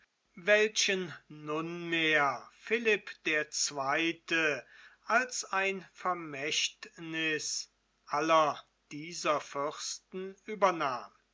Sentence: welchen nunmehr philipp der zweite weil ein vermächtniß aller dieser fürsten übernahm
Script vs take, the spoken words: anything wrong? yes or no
yes